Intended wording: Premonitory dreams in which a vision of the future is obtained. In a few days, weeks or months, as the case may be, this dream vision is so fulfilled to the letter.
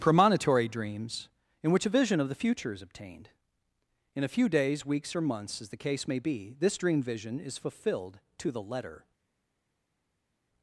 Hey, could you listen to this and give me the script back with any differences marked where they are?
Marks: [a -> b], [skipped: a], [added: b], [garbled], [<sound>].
Premonitory dreams in which a vision of the future is obtained. In a few days, weeks or months, as the case may be, this dream vision is [skipped: so] fulfilled to the letter.